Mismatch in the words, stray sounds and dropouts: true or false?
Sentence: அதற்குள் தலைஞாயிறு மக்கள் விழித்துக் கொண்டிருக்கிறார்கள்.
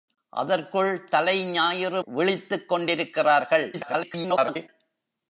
true